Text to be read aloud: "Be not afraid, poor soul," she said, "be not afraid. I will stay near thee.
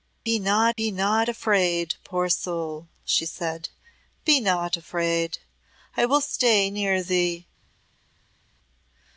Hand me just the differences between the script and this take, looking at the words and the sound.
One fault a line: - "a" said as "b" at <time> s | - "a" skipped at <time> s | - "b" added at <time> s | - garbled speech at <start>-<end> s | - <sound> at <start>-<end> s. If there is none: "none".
- "be not" added at 0.7 s